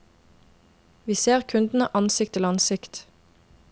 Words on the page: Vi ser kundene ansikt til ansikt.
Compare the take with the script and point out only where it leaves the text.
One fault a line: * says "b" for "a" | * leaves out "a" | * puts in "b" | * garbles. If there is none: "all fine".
all fine